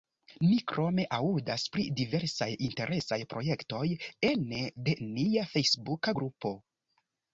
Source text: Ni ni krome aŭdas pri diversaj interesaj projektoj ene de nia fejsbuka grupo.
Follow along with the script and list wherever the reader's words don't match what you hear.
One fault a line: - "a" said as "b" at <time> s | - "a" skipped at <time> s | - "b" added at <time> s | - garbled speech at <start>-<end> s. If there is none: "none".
- "ni" skipped at 0.5 s